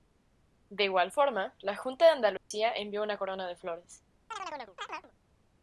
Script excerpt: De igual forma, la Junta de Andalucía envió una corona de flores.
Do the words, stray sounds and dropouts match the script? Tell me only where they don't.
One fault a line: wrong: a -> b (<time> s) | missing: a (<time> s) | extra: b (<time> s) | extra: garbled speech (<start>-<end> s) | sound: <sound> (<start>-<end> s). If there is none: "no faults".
sound: dropout (2.4-2.5 s)
sound: chirp (4.3-5.1 s)